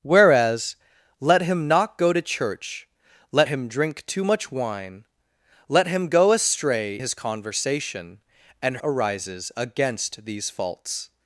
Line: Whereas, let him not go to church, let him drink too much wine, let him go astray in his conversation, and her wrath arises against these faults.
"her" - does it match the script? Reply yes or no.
no